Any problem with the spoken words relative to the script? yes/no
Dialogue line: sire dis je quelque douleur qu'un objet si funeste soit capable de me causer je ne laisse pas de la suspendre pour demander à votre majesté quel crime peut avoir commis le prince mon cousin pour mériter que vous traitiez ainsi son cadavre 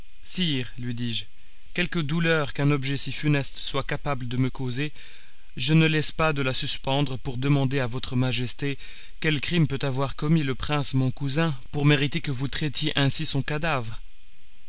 yes